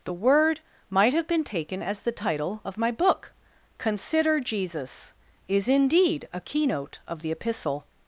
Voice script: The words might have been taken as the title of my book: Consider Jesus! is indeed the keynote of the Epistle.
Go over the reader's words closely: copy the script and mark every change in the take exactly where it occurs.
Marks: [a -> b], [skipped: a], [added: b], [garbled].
The [words -> word] might have been taken as the title of my book: Consider Jesus! is indeed [the -> a] keynote of the Epistle.